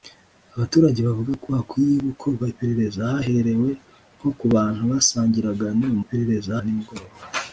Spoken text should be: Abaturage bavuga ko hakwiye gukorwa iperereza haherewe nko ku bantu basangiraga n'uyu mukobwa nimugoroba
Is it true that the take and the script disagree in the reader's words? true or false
true